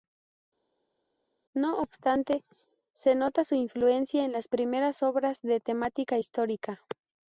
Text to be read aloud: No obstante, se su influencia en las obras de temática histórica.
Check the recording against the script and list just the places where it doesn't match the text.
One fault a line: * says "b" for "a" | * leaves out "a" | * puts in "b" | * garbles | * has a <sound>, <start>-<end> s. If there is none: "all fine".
* puts in "nota"
* puts in "primeras"